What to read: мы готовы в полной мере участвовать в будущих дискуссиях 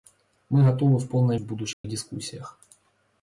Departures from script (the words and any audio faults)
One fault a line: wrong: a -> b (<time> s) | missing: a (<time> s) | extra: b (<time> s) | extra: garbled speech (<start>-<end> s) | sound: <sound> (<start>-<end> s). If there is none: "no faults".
missing: мере участвовать (1.4 s)
sound: dropout (1.7-1.8 s)